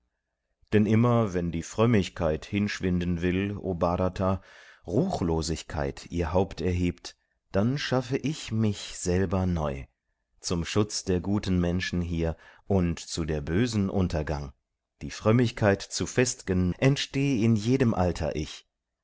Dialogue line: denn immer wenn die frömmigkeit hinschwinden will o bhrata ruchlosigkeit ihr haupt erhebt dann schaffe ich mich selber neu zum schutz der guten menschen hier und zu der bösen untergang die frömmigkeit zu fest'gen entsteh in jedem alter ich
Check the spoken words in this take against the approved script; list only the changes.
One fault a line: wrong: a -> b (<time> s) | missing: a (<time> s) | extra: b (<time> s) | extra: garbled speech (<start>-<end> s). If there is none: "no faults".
no faults